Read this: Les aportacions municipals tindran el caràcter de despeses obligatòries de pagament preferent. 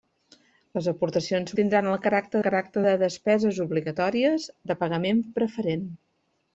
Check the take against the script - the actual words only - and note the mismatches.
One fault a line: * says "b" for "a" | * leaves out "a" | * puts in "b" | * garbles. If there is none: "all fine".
* leaves out "municipals"
* puts in "caràcter"